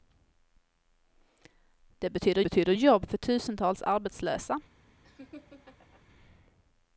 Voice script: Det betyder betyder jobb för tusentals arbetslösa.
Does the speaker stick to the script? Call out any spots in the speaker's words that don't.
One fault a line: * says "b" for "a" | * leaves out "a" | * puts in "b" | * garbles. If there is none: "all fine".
all fine